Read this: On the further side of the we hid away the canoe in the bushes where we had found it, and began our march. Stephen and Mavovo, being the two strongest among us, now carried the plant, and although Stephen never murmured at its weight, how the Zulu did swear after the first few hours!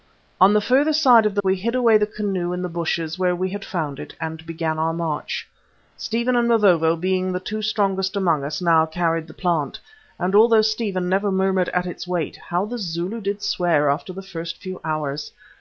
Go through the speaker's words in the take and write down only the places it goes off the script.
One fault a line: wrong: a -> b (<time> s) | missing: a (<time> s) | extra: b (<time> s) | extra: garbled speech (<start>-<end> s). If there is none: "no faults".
no faults